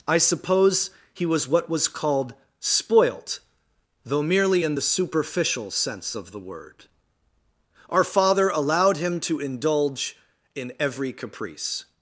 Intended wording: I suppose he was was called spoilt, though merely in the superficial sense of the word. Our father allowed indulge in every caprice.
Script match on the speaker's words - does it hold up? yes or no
no